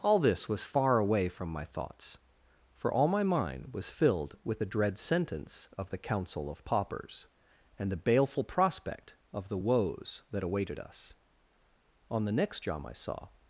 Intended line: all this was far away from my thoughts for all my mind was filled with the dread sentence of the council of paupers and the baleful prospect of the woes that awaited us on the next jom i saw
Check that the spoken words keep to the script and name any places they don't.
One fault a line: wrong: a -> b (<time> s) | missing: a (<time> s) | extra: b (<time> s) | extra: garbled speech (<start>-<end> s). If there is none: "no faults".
no faults